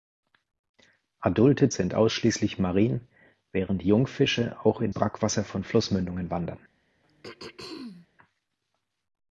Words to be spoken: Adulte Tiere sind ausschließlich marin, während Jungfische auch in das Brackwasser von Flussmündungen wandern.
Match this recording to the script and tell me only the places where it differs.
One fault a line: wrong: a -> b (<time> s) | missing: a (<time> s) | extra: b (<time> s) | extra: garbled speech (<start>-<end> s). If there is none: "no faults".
missing: Tiere (1.7 s)
missing: das (4.9 s)